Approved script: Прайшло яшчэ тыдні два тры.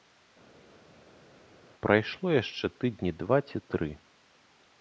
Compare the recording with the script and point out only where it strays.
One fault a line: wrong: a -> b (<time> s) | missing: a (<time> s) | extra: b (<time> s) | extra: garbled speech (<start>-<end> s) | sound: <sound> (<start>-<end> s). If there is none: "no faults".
extra: ці (3.5 s)